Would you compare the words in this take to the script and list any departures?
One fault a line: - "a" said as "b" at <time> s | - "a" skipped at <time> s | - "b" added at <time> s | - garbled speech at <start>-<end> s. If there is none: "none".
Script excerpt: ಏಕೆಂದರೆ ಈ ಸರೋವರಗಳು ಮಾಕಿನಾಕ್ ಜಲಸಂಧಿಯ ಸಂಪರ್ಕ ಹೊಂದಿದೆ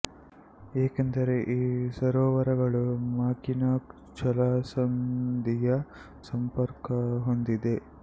none